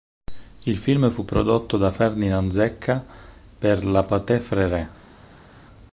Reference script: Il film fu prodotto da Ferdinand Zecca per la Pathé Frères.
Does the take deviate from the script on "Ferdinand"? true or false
false